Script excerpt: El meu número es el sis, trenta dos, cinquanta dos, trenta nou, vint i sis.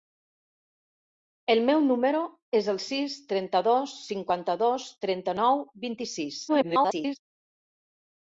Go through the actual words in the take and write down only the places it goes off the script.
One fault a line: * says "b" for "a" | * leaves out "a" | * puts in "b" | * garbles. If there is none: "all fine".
* garbles